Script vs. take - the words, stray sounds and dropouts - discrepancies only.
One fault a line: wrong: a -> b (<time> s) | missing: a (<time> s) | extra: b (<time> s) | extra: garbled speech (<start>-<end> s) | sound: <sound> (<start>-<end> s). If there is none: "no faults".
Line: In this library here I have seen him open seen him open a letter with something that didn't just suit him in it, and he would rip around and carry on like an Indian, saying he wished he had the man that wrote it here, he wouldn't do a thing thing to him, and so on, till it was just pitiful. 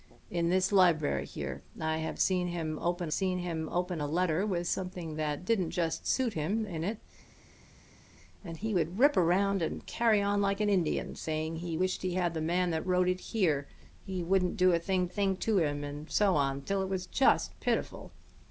no faults